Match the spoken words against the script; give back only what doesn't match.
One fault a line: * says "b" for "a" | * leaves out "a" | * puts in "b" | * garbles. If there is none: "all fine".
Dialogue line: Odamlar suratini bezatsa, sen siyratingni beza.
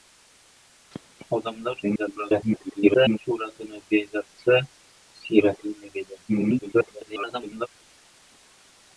* garbles
* leaves out "sen"
* garbles